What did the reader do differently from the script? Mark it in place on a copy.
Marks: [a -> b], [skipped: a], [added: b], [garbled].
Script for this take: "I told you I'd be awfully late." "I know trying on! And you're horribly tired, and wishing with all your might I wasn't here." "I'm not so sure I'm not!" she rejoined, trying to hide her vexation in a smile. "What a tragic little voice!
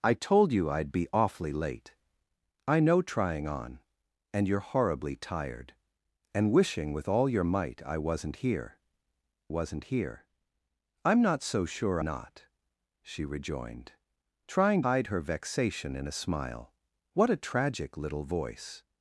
"I told you I'd be awfully late." "I know trying on! And you're horribly tired, and wishing with all your might I wasn't here." [added: wasn't here] "I'm not so sure [skipped: I'm] not!" she rejoined, trying [skipped: to] hide her vexation in a smile. "What a tragic little voice!